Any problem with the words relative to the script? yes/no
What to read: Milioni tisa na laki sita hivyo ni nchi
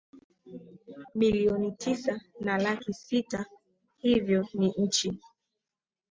no